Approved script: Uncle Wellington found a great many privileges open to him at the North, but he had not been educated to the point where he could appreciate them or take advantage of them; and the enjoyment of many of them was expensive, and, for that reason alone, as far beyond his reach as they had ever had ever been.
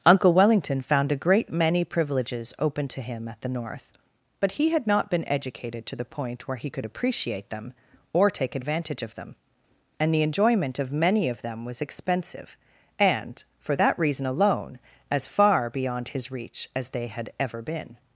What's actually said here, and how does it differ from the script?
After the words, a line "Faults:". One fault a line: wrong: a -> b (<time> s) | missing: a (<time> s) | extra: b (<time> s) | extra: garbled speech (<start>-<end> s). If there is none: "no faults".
Uncle Wellington found a great many privileges open to him at the North, but he had not been educated to the point where he could appreciate them or take advantage of them; and the enjoyment of many of them was expensive, and, for that reason alone, as far beyond his reach as they had ever been.
Faults:
missing: had ever (17.6 s)